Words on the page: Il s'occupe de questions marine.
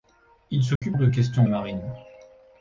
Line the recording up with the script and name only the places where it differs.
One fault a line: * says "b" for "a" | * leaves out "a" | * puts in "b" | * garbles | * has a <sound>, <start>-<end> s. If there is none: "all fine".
* has a dropout, 0.8-0.8 s